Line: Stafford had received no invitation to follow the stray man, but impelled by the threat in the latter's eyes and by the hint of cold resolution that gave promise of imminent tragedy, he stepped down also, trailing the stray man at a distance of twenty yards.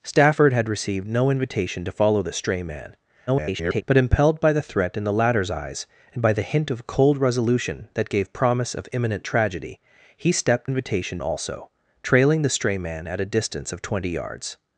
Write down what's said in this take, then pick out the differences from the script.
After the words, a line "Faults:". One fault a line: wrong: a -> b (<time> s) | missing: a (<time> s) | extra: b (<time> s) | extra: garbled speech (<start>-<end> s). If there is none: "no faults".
Stafford had received no invitation to follow the stray man, [garbled] but impelled by the threat in the latter's eyes and by the hint of cold resolution that gave promise of imminent tragedy, he stepped invitation also, trailing the stray man at a distance of twenty yards.
Faults:
extra: garbled speech (3.3-3.8 s)
wrong: down -> invitation (10.6 s)